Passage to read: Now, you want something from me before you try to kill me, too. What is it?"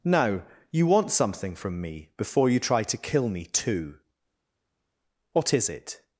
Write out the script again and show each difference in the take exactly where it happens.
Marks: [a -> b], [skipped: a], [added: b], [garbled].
Now, you want something from me before you try to kill me, too. What is it?"